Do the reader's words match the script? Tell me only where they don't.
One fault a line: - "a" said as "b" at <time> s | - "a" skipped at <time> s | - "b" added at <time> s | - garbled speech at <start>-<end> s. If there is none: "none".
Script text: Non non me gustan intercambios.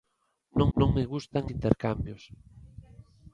none